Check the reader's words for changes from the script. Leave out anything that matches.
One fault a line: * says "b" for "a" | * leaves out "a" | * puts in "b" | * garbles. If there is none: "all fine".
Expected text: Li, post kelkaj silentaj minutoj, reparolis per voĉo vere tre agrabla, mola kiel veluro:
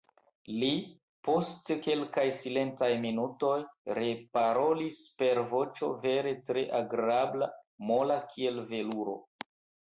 all fine